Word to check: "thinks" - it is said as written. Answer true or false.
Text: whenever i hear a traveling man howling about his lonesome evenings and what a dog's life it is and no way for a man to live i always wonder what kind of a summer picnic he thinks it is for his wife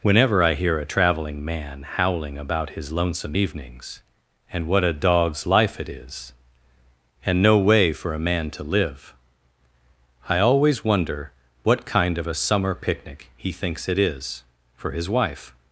true